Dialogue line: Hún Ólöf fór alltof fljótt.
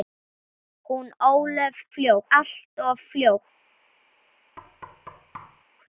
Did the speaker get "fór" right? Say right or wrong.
wrong